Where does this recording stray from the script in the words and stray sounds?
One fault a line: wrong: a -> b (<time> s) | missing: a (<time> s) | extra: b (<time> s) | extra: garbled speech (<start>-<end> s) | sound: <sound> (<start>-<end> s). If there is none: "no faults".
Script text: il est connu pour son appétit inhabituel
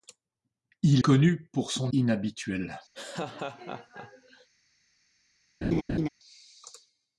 missing: est (1.0 s)
missing: appétit (1.9 s)
sound: laugh (2.9-4.5 s)
sound: laugh (5.6-6.1 s)